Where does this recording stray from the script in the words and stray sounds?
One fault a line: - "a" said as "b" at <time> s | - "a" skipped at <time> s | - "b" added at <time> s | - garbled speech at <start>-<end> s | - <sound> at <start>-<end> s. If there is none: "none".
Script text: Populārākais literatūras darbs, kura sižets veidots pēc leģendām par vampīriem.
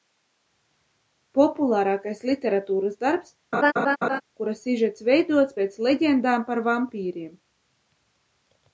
- laugh at 3.5-4.2 s